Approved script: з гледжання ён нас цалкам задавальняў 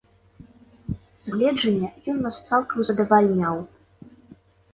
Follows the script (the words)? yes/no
yes